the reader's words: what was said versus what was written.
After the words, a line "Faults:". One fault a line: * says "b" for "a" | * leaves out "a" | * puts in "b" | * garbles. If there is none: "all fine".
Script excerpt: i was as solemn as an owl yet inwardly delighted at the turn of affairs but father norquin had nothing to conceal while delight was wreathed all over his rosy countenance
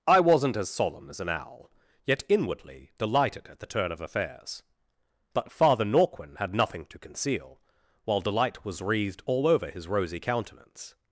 i wasn't as solemn as an owl yet inwardly delighted at the turn of affairs but father norquin had nothing to conceal while delight was wreathed all over his rosy countenance
Faults:
* says "wasn't" for "was"